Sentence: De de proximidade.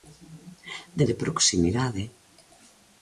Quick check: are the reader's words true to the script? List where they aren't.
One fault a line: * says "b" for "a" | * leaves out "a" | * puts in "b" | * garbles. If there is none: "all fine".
all fine